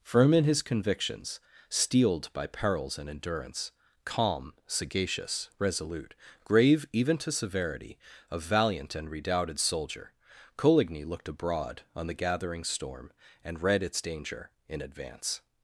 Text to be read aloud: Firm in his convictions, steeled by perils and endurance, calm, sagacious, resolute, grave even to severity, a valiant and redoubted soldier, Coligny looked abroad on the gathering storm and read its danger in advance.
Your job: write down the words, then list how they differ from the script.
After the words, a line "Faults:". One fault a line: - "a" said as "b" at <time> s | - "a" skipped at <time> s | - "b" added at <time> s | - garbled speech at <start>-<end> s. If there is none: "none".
Firm in his convictions, steeled by perils and endurance, calm, sagacious, resolute, grave even to severity, a valiant and redoubted soldier, Coligny looked abroad on the gathering storm and read its danger in advance.
Faults:
none